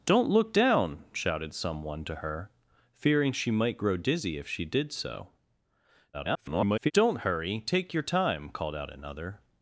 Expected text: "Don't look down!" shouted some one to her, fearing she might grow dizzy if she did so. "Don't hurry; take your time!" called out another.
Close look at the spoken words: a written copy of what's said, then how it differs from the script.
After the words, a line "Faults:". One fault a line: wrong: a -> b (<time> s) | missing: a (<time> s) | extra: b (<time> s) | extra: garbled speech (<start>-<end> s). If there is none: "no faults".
"Don't look down!" shouted some one to her, fearing she might grow dizzy if she did so. [garbled] "Don't hurry; take your time!" called out another.
Faults:
extra: garbled speech (6.1-6.9 s)